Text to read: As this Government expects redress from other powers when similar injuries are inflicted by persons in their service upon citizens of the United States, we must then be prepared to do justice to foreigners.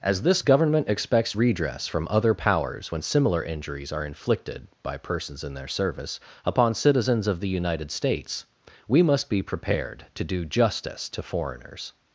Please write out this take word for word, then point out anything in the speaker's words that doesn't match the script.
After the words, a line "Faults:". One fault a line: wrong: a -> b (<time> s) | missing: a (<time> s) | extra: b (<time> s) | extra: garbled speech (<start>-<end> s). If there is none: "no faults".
As this Government expects redress from other powers when similar injuries are inflicted by persons in their service upon citizens of the United States, we must be prepared to do justice to foreigners.
Faults:
missing: then (9.3 s)